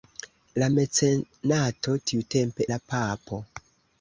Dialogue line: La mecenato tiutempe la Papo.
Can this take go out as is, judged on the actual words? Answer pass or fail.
pass